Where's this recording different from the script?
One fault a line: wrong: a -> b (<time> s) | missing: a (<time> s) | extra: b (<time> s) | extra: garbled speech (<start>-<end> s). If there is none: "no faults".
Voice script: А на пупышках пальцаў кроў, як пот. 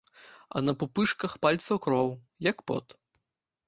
no faults